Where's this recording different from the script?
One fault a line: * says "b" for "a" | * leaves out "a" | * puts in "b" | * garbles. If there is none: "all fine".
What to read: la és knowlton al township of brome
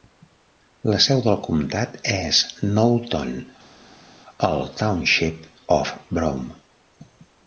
* puts in "seu del comtat"